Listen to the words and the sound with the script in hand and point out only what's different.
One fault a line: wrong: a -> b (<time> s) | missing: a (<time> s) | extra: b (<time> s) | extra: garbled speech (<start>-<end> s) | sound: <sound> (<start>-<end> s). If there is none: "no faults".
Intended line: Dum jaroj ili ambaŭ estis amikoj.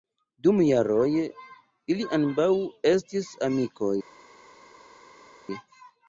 no faults